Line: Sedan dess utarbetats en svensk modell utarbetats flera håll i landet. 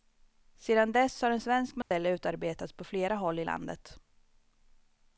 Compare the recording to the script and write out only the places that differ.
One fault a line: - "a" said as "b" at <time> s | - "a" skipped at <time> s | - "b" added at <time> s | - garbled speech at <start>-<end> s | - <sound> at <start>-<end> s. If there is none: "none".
- "utarbetats" said as "har" at 1.2 s
- dropout at 1.8-1.9 s
- "på" added at 2.7 s